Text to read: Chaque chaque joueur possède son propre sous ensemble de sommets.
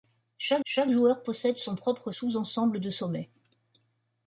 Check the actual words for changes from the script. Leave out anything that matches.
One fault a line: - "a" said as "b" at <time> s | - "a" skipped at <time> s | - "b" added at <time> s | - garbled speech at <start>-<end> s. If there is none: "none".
none